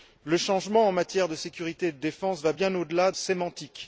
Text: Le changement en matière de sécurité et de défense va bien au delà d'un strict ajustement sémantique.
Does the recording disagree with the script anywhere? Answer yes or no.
yes